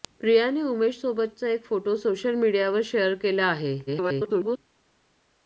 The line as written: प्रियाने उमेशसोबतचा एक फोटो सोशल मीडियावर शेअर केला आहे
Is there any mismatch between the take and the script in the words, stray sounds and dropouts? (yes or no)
yes